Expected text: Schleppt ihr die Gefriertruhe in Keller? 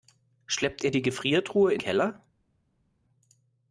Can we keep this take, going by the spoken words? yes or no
yes